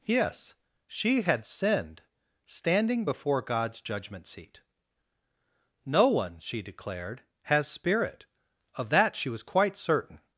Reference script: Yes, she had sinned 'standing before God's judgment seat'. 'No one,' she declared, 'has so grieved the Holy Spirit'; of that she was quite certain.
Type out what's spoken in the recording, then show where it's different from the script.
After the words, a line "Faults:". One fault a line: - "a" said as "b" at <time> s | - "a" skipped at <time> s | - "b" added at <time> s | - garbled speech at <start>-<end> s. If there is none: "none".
Yes, she had sinned 'standing before God's judgment seat'. 'No one,' she declared, 'has Spirit'; of that she was quite certain.
Faults:
- "so grieved the Holy" skipped at 7.7 s